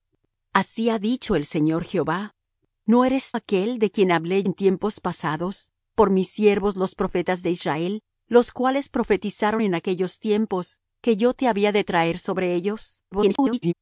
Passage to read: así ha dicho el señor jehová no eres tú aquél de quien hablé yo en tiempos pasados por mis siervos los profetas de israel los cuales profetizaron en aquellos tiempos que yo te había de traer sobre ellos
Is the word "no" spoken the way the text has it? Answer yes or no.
yes